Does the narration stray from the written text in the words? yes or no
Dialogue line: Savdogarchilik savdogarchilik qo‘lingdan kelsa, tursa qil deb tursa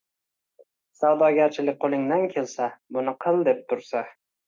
yes